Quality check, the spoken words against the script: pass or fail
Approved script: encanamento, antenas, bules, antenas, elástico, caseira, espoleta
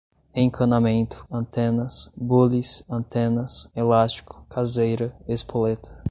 pass